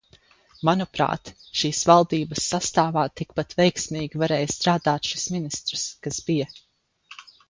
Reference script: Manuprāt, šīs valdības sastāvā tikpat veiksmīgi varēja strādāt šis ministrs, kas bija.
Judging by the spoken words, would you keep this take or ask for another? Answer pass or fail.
pass